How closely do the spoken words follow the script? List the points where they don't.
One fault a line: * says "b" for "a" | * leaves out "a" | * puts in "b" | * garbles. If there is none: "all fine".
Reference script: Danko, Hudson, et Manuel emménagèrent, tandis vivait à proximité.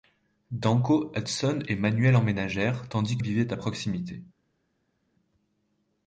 all fine